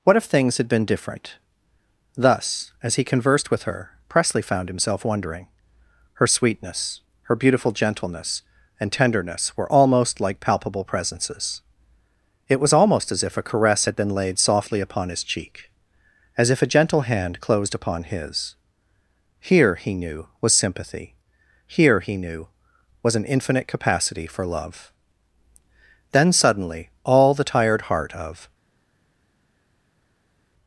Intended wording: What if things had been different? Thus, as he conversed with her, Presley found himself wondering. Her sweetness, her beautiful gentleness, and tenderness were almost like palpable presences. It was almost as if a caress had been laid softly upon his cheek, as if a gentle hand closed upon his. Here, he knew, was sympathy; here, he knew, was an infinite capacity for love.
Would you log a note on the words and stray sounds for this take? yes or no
yes